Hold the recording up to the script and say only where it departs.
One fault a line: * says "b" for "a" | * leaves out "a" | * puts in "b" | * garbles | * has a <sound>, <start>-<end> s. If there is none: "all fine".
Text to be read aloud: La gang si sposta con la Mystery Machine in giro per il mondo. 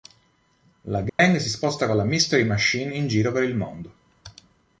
* has a dropout, 1.1-1.2 s